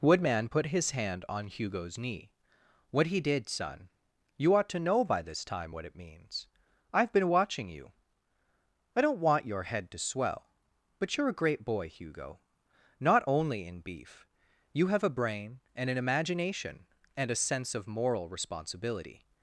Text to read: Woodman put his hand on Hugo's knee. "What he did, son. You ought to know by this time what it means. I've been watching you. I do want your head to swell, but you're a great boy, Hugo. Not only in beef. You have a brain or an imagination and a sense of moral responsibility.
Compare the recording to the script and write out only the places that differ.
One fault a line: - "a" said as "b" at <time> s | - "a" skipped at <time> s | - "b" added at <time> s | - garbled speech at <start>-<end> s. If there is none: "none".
- "do" said as "don't" at 9.0 s
- "or" said as "and" at 15.8 s